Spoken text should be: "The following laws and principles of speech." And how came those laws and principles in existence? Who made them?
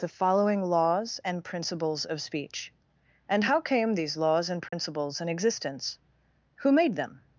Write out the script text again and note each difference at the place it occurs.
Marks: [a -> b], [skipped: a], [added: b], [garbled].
"The following laws and principles of speech." And how came [those -> these] laws and principles in existence? Who made them?